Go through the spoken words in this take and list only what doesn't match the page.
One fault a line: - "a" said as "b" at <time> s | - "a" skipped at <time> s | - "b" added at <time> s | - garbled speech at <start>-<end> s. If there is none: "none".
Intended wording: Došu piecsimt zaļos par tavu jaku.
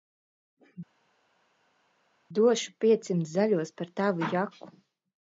none